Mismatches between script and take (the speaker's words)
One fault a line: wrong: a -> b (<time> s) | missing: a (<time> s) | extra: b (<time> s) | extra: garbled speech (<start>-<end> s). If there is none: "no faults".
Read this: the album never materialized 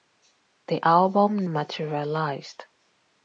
missing: never (1.4 s)